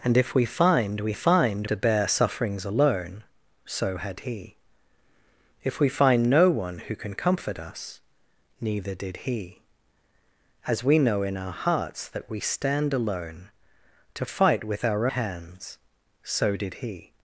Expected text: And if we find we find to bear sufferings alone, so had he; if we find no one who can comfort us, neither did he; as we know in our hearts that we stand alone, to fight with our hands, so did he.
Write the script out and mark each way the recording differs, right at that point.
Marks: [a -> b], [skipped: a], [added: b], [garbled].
And if we find we find to bear sufferings alone, so had he; if we find no one who can comfort us, neither did he; as we know in our hearts that we stand alone, to fight with our hands, so did he.